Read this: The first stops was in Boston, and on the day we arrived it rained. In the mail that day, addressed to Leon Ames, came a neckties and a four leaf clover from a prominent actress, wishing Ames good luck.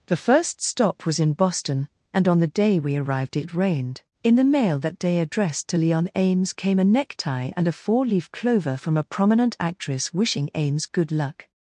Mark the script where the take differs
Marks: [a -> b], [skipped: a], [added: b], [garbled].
The first [stops -> stop] was in Boston, and on the day we arrived it rained. In the mail that day, addressed to Leon Ames, came a [neckties -> necktie] and a four leaf clover from a prominent actress, wishing Ames good luck.